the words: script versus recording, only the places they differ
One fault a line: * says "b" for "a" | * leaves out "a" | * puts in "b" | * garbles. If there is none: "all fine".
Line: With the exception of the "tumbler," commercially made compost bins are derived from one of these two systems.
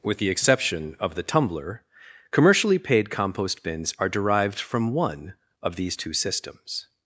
* says "paid" for "made"